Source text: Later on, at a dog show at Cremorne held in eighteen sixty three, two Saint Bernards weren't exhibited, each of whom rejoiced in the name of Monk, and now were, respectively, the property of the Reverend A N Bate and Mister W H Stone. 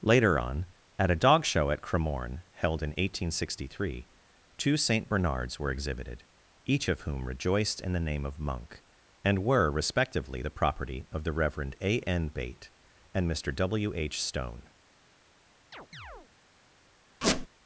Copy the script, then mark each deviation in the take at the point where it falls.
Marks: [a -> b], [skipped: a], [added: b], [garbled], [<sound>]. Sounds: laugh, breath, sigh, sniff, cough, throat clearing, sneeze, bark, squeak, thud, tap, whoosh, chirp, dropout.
Later on, at a dog show at Cremorne held in eighteen sixty three, two Saint Bernards [weren't -> were] exhibited, each of whom rejoiced in the name of Monk, and [skipped: now] were, respectively, the property of the Reverend A N Bate and Mister W H Stone. [chirp] [squeak]